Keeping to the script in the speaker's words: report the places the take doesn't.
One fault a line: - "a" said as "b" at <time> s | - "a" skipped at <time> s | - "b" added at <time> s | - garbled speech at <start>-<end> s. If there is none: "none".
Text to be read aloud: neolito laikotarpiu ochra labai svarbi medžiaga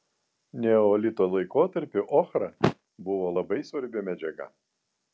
- "buvo" added at 3.1 s